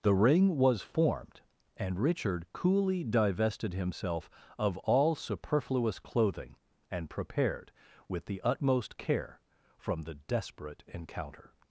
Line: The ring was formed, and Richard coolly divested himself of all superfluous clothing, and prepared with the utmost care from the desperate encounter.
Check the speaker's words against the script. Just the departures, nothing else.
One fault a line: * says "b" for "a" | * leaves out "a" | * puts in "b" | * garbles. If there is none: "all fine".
all fine